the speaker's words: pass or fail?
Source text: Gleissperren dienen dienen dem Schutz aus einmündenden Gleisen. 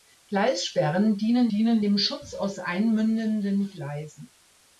pass